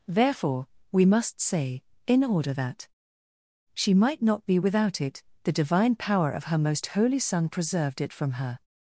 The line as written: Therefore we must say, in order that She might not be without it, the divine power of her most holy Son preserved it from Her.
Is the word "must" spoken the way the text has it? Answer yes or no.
yes